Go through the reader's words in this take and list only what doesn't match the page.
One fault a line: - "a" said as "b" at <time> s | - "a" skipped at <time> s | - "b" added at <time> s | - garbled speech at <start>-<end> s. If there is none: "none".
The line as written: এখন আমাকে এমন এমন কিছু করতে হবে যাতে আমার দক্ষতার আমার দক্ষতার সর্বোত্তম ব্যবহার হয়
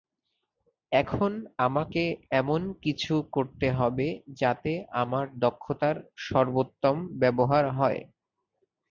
- "এমন" skipped at 2.6 s
- "আমার দক্ষতার" skipped at 6.0 s